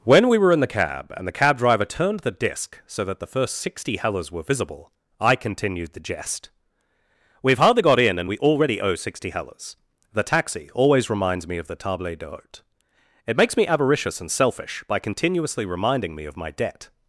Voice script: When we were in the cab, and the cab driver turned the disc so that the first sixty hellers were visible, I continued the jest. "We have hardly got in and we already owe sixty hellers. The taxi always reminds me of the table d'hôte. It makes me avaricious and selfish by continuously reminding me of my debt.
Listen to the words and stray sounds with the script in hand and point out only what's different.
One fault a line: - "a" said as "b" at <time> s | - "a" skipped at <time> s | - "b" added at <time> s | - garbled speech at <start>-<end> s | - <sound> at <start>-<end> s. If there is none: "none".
none